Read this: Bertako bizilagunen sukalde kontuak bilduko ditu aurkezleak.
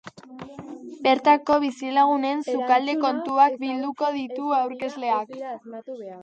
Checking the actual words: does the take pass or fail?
pass